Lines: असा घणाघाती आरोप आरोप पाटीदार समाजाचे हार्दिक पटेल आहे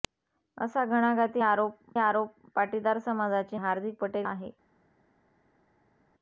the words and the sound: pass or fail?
pass